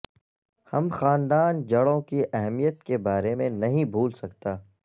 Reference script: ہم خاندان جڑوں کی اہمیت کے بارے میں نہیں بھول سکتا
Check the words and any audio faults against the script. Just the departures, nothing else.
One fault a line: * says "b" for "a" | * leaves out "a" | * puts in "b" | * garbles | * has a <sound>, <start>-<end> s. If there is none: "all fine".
all fine